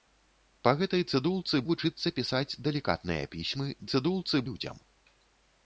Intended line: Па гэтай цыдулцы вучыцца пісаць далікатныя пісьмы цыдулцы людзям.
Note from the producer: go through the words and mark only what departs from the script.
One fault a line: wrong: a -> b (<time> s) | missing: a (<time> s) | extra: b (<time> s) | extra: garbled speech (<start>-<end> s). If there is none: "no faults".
no faults